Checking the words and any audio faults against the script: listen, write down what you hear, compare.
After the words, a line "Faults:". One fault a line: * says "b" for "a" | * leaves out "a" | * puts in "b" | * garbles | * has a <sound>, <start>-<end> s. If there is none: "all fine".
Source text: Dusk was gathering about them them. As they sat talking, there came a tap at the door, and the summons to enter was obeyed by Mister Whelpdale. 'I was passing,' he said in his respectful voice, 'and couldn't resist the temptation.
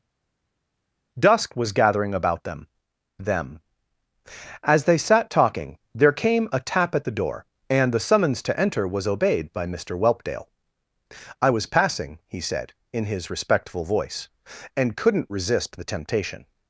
Dusk was gathering about them them. As they sat talking, there came a tap at the door, and the summons to enter was obeyed by Mister Whelpdale. 'I was passing,' he said in his respectful voice, 'and couldn't resist the temptation.
Faults:
all fine